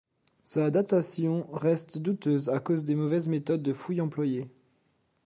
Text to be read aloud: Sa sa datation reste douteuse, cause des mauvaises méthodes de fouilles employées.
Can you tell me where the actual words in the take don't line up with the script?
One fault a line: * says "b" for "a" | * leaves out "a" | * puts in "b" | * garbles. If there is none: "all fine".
* leaves out "sa"
* puts in "à"